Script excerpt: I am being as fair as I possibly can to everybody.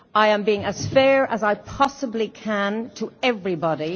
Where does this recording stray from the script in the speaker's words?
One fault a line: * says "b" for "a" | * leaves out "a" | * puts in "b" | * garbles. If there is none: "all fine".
all fine